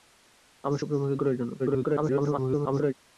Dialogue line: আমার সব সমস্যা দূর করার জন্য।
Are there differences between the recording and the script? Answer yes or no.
yes